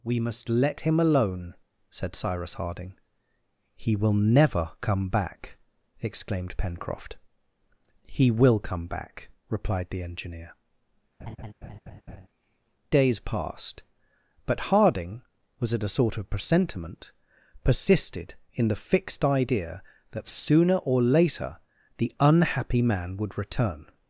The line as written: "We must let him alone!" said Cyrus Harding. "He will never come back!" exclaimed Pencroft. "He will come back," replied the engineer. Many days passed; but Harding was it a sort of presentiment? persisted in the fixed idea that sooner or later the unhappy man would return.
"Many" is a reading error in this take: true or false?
true